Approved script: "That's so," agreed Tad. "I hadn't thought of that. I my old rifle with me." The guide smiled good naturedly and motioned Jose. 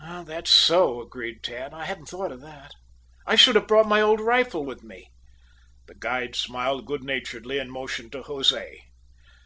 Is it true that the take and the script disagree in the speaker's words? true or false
true